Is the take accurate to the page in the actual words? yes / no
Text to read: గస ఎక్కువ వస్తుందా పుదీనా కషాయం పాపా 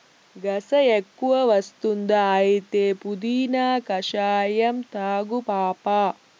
no